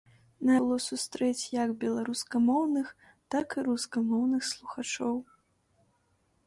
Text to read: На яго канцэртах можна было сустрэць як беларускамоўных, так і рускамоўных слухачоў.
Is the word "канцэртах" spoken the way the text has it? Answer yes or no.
no